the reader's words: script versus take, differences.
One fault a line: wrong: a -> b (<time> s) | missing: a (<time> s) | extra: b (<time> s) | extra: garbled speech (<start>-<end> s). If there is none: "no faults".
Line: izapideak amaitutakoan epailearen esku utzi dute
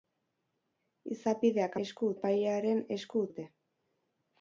wrong: amaitutakoan -> esku (1.9 s)
missing: utzi (3.3 s)